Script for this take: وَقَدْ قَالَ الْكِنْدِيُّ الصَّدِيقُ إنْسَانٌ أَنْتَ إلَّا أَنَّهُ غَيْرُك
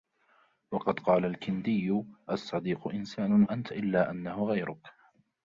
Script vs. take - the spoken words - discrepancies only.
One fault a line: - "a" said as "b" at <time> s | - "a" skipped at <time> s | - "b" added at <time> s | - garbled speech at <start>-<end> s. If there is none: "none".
none